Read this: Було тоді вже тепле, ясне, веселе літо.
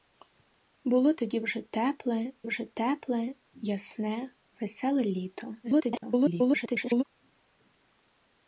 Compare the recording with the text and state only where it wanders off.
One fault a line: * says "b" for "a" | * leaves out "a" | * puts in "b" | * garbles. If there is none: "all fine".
* puts in "вже тепле"
* garbles